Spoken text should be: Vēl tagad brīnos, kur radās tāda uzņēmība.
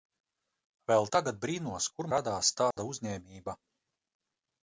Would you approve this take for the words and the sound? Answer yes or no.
no